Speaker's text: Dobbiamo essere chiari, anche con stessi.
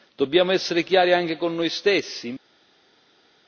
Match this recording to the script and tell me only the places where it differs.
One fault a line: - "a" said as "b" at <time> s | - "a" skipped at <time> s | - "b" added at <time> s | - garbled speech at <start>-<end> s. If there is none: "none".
- "noi" added at 1.6 s